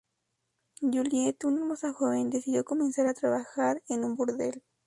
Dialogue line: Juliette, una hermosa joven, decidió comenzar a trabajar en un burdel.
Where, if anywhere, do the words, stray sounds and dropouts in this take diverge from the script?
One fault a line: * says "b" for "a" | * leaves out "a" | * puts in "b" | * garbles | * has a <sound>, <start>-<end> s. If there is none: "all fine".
all fine